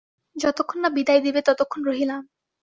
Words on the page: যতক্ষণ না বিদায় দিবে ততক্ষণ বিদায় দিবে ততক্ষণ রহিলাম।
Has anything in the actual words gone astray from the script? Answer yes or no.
yes